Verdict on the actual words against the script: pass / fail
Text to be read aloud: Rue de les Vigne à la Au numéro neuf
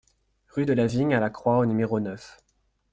fail